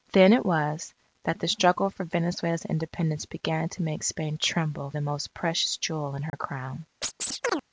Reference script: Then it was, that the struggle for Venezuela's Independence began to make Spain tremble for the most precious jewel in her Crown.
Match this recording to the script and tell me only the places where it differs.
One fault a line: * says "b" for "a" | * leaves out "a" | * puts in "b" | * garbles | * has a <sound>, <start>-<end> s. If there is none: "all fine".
* leaves out "for"
* has a dropout, 6.3-6.3 s
* has a chirp, 7.0-7.6 s